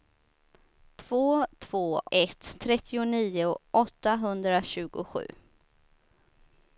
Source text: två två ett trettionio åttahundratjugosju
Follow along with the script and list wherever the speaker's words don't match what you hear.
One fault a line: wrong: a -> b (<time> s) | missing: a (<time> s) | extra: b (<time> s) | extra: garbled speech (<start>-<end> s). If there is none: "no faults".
no faults